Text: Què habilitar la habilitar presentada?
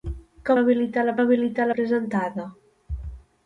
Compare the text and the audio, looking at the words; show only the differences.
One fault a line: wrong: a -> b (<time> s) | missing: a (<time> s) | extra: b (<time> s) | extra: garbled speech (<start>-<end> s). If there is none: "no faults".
no faults